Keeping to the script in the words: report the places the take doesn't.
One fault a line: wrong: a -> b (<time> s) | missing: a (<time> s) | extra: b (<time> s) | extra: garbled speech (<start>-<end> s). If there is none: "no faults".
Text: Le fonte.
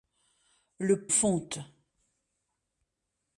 no faults